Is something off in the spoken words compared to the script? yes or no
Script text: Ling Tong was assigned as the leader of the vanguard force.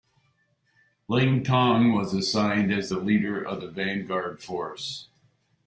no